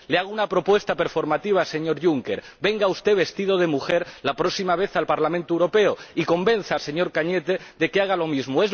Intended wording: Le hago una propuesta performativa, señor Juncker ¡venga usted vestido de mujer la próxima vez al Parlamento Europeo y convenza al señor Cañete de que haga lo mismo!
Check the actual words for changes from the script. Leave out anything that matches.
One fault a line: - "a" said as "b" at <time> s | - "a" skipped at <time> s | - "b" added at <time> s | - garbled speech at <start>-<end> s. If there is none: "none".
none